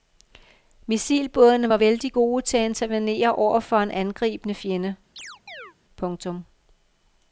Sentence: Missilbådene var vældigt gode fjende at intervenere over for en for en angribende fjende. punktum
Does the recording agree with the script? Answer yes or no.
no